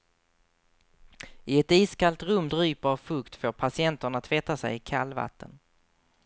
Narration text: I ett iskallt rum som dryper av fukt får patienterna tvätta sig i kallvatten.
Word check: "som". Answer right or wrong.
wrong